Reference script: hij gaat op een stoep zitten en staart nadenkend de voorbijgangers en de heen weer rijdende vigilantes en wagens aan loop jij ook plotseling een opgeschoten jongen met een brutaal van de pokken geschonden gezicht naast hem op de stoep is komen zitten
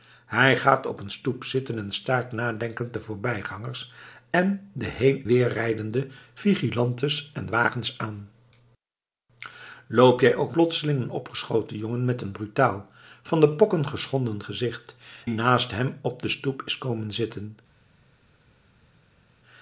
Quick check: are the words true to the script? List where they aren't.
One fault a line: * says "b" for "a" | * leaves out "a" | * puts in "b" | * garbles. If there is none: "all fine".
all fine